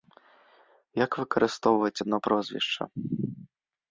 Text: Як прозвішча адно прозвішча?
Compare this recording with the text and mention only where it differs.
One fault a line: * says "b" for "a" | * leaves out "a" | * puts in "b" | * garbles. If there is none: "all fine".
* says "выкарыстоўваць" for "прозвішча"